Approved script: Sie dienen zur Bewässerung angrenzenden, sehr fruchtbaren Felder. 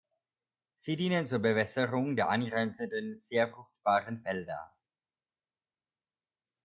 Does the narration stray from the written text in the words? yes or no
yes